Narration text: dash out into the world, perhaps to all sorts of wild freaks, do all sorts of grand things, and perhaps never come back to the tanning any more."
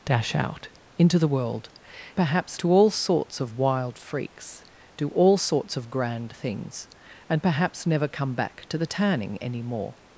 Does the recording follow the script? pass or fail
pass